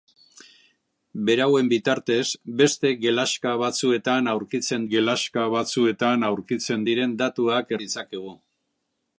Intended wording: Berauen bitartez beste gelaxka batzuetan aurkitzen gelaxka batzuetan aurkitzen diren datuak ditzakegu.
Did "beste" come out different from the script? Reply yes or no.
no